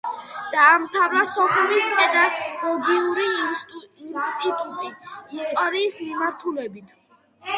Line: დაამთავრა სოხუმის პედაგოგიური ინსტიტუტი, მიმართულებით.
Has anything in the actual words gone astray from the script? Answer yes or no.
yes